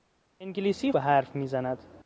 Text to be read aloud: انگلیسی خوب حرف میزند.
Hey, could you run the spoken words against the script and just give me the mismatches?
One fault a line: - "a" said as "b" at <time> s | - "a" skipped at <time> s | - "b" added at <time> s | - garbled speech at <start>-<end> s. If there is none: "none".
- "خوب" skipped at 0.9 s